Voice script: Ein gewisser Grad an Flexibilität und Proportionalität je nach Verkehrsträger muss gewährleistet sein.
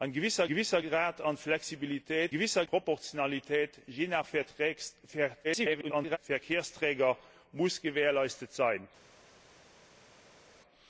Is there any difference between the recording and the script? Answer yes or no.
yes